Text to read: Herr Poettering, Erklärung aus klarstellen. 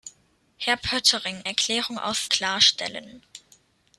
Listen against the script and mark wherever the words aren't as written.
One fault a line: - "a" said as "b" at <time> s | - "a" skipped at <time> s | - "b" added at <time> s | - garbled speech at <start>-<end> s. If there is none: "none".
none